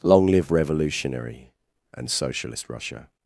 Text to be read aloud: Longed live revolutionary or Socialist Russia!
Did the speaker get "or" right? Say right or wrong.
wrong